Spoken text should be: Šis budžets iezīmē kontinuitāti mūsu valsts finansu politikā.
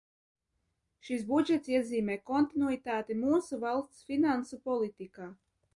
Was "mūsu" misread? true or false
false